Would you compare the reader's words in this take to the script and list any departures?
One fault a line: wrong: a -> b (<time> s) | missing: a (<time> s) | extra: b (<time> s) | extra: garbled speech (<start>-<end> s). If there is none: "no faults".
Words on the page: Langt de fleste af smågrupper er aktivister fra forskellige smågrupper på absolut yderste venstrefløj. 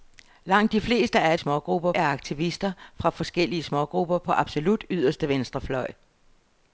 no faults